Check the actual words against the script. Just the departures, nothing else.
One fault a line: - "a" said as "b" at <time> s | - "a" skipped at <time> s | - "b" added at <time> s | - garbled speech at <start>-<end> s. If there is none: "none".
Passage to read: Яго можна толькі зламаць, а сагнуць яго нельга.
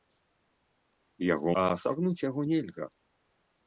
- "можна толькі зламаць" skipped at 1.5 s